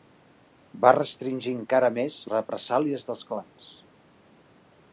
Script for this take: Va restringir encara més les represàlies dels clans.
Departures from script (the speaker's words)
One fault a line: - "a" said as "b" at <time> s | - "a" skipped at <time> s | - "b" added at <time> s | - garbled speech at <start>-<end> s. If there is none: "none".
- "les" skipped at 2.2 s